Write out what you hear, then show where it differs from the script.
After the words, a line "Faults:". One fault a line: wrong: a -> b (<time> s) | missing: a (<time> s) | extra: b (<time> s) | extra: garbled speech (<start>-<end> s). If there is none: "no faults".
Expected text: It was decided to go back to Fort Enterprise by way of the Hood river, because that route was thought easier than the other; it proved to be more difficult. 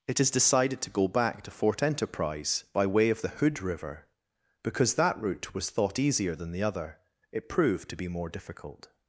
It is decided to go back to Fort Enterprise by way of the Hood river, because that route was thought easier than the other; it proved to be more difficult.
Faults:
wrong: was -> is (0.2 s)